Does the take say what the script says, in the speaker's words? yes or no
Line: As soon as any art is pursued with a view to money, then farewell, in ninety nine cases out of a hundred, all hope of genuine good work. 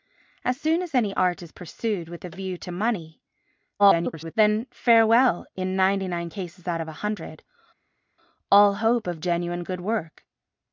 no